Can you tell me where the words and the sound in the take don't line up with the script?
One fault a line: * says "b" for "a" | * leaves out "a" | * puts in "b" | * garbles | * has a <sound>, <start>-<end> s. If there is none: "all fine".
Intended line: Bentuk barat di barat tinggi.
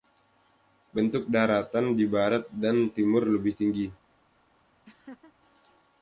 * says "daratan" for "barat"
* puts in "dan timur lebih"
* has a laugh, 4.8-5.3 s